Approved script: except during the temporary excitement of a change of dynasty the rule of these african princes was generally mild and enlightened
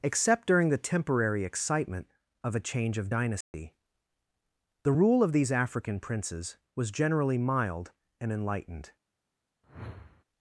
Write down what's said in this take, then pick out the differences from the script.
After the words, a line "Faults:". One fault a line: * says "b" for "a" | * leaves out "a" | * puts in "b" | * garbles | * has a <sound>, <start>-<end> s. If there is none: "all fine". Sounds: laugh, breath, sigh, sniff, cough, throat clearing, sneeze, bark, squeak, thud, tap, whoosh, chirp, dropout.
except during the temporary excitement of a change of dynasty the rule of these african princes was generally mild and enlightened
Faults:
* has a dropout, 3.4-3.5 s
* has a whoosh, 9.6-10.2 s